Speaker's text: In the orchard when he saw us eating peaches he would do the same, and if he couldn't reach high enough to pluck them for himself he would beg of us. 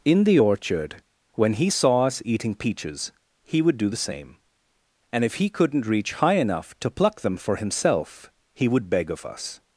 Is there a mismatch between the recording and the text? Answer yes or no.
no